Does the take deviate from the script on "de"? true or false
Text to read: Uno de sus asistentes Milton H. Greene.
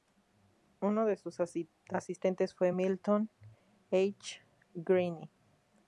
false